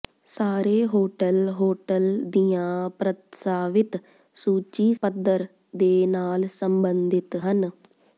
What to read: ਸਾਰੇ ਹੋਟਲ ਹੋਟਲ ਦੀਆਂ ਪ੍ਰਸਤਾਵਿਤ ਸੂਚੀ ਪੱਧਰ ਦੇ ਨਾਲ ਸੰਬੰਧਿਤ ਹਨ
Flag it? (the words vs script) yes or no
no